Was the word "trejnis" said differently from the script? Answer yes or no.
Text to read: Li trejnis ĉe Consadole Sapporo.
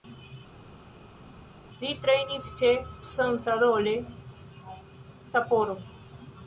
no